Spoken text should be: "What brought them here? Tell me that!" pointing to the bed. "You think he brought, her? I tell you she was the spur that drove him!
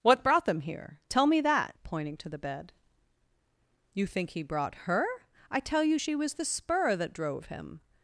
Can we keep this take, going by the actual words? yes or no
yes